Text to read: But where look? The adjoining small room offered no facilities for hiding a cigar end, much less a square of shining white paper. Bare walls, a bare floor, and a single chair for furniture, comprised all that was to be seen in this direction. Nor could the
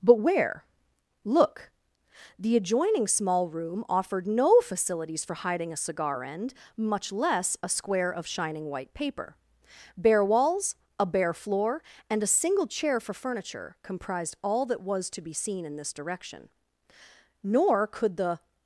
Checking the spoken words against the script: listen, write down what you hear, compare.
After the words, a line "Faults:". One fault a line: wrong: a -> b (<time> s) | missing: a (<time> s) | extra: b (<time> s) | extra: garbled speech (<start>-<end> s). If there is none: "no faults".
But where look? The adjoining small room offered no facilities for hiding a cigar end, much less a square of shining white paper. Bare walls, a bare floor, and a single chair for furniture, comprised all that was to be seen in this direction. Nor could the
Faults:
no faults